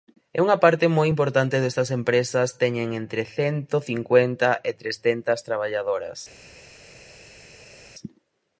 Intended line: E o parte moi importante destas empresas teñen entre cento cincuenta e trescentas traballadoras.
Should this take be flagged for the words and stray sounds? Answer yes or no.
yes